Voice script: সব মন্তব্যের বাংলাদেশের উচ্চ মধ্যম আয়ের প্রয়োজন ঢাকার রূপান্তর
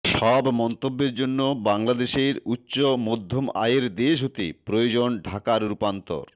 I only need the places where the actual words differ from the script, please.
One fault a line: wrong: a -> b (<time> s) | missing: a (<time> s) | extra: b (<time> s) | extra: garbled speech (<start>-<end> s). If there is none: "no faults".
extra: জন্য (1.1 s)
extra: দেশ হতে (4.0 s)